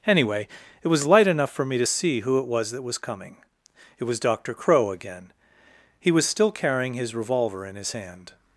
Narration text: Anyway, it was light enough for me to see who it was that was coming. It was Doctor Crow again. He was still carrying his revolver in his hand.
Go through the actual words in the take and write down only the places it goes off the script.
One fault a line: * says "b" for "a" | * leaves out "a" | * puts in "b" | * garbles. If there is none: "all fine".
all fine